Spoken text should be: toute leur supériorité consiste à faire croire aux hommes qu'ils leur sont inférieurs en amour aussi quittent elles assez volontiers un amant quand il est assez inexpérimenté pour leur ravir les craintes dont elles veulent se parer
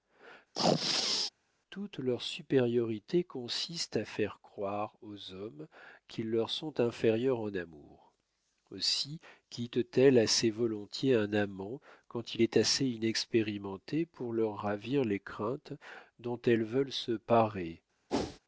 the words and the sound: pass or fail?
fail